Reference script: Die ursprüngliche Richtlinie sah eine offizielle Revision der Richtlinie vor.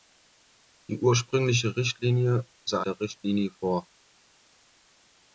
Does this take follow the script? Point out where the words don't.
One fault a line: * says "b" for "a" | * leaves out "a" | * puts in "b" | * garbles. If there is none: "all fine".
* leaves out "eine offizielle Revision"